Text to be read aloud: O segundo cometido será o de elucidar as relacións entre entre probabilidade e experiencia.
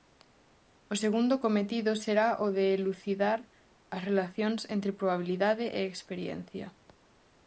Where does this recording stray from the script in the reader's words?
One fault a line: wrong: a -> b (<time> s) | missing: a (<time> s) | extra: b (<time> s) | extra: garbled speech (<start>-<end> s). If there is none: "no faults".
missing: entre (5.0 s)